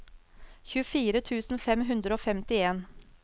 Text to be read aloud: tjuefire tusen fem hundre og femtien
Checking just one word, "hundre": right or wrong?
right